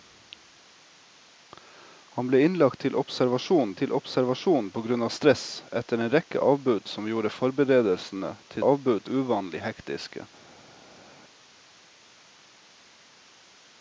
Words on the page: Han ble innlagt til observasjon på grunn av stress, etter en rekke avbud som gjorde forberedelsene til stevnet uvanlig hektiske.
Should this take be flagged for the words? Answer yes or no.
yes